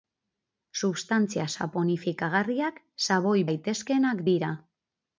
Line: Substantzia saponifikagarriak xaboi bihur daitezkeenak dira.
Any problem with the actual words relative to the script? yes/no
yes